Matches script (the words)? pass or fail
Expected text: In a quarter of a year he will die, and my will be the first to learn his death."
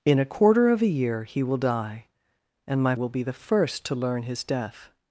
pass